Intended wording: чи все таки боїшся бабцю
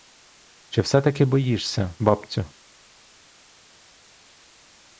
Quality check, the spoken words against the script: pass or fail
pass